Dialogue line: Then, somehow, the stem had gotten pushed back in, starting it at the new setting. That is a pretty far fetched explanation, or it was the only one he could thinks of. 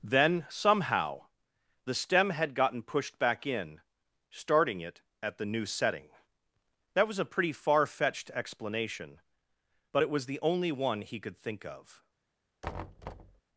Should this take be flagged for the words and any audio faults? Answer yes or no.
yes